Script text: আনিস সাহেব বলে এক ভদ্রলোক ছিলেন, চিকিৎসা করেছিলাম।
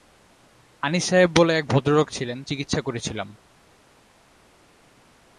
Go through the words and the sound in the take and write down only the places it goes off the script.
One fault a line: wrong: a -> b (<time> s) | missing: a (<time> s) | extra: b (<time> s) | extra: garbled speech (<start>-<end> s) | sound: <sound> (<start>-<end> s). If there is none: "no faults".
no faults